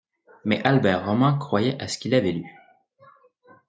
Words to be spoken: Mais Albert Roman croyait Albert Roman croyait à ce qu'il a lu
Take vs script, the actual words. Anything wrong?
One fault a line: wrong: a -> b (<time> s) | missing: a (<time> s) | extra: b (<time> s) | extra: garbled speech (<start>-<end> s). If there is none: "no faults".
missing: Albert Roman croyait (1.8 s)
wrong: a -> avait (2.1 s)